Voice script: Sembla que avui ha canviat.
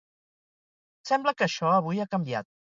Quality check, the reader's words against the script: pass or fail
fail